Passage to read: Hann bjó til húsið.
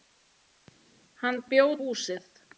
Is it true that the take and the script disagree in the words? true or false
true